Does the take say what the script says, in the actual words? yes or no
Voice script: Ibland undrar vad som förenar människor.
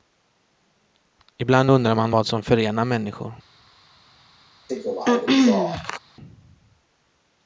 no